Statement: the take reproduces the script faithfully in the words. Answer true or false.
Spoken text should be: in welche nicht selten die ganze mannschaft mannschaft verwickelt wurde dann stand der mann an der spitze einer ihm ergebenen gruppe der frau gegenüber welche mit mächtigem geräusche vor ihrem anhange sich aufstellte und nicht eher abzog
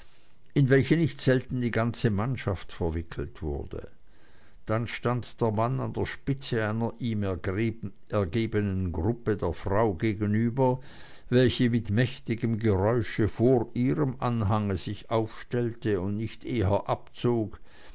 false